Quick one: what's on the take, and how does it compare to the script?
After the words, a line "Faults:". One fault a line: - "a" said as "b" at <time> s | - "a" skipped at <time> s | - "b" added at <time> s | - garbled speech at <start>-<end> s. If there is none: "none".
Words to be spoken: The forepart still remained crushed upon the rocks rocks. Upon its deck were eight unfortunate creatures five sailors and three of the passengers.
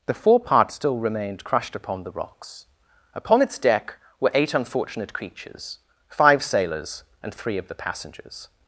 The forepart still remained crushed upon the rocks. Upon its deck were eight unfortunate creatures five sailors and three of the passengers.
Faults:
- "rocks" skipped at 2.6 s